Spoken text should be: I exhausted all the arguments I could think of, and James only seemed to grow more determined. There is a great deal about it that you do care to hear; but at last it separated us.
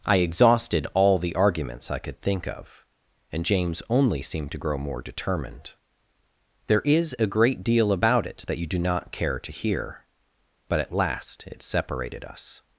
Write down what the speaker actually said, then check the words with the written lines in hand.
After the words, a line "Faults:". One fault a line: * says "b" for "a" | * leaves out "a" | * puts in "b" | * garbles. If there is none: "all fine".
I exhausted all the arguments I could think of, and James only seemed to grow more determined. There is a great deal about it that you do not care to hear; but at last it separated us.
Faults:
* puts in "not"